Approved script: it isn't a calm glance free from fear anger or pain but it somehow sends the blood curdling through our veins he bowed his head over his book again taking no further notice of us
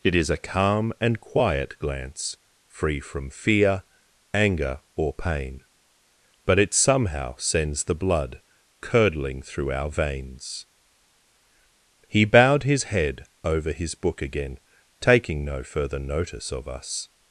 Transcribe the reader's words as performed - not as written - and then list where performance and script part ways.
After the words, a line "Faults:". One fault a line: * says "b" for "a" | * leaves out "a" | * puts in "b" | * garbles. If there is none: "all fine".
it is a calm and quiet glance free from fear anger or pain but it somehow sends the blood curdling through our veins he bowed his head over his book again taking no further notice of us
Faults:
* says "is" for "isn't"
* puts in "and quiet"